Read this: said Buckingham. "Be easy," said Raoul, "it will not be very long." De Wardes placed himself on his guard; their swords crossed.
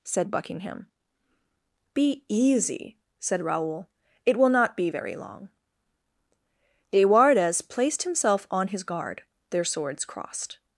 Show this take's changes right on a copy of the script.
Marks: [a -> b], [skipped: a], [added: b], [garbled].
said Buckingham. "Be easy," said Raoul, "it will not be very long." De Wardes placed himself on his guard; their swords crossed.